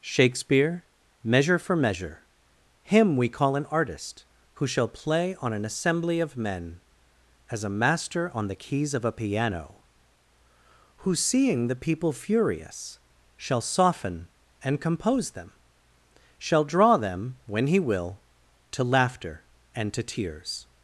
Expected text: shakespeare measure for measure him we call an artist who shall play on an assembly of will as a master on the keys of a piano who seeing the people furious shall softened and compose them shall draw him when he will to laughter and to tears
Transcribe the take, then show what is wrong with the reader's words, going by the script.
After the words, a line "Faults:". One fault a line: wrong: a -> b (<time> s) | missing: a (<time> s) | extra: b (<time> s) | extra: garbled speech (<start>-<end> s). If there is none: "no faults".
shakespeare measure for measure him we call an artist who shall play on an assembly of men as a master on the keys of a piano who seeing the people furious shall soften and compose them shall draw them when he will to laughter and to tears
Faults:
wrong: will -> men (6.3 s)
wrong: softened -> soften (13.6 s)
wrong: him -> them (17.0 s)